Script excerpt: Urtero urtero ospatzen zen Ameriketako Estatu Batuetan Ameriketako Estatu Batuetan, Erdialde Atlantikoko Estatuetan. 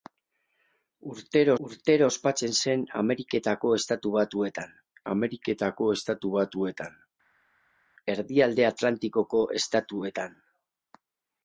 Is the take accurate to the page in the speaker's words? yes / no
yes